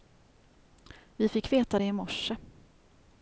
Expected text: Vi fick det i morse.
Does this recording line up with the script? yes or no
no